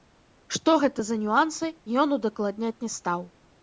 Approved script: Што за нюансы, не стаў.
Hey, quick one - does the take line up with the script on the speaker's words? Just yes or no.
no